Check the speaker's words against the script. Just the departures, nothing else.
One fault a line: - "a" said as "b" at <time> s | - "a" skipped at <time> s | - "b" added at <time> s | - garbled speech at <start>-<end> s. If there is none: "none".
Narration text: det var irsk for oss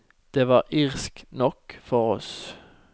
- "nok" added at 1.3 s